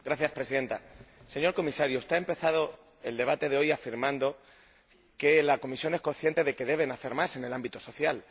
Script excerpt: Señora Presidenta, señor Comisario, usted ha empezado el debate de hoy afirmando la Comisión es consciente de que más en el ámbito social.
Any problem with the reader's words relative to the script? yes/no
yes